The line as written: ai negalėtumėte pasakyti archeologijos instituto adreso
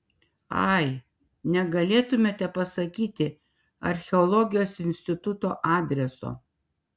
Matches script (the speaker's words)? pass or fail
pass